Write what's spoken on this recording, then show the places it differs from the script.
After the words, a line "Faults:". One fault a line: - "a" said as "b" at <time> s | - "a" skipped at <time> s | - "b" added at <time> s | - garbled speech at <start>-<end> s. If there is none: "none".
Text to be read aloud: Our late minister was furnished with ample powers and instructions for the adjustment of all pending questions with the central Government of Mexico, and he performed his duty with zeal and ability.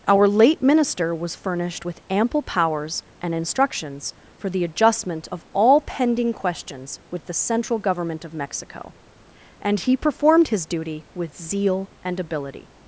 Our late minister was furnished with ample powers and instructions for the adjustment of all pending questions with the central Government of Mexico, and he performed his duty with zeal and ability.
Faults:
none